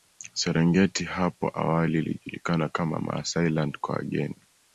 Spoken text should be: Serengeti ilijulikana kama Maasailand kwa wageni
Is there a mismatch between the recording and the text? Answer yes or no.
yes